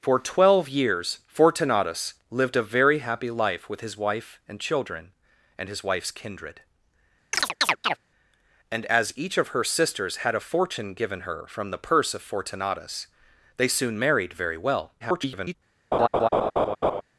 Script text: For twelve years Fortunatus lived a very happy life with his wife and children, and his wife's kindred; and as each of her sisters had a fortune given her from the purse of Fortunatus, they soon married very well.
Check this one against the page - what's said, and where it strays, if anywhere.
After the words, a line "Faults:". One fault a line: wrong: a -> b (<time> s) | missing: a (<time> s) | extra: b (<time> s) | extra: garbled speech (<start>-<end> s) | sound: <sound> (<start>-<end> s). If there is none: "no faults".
For twelve years Fortunatus lived a very happy life with his wife and children, and his wife's kindred; and as each of her sisters had a fortune given her from the purse of Fortunatus, they soon married very well. [garbled]
Faults:
sound: chirp (7.3-8.0 s)
extra: garbled speech (15.0-15.5 s)
sound: laugh (15.9-17.0 s)